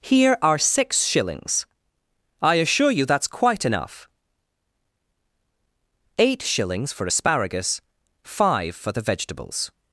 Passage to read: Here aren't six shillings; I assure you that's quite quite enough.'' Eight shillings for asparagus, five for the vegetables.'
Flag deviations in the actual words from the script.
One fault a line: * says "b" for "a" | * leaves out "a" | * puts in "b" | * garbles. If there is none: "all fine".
* says "are" for "aren't"
* leaves out "quite"